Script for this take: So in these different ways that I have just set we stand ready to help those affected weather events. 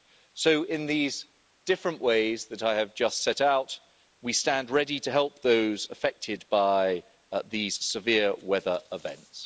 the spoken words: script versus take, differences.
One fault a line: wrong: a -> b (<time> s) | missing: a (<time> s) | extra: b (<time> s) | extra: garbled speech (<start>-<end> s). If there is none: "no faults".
extra: out (3.4 s)
extra: by these severe (6.5 s)